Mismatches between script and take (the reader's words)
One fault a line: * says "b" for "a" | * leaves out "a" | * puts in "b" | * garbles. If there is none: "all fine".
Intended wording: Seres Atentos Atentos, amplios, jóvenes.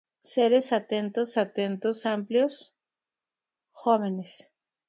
all fine